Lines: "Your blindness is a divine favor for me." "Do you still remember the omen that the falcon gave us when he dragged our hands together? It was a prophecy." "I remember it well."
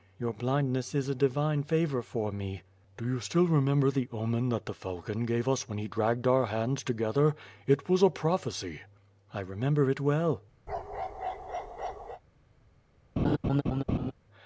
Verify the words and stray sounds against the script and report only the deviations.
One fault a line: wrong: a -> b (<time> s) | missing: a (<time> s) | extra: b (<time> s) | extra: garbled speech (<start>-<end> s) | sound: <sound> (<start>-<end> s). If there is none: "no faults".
sound: bark (10.7-12.2 s)
sound: laugh (13.2-14.1 s)